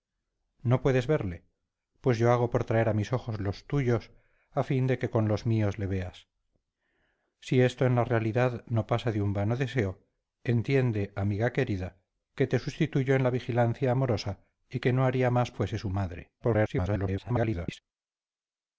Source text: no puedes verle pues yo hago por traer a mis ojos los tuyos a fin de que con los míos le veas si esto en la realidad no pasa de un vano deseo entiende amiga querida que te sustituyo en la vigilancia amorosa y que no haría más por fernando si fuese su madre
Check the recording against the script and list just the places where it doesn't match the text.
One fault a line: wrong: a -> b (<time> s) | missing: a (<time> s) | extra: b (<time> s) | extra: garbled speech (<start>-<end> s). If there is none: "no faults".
missing: por fernando si (15.5 s)
extra: garbled speech (16.4-17.8 s)